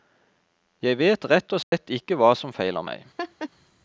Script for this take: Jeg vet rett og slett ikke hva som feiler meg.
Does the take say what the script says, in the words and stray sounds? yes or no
no